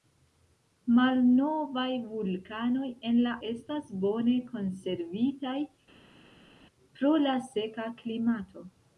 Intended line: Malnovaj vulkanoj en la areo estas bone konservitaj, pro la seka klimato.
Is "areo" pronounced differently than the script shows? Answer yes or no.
yes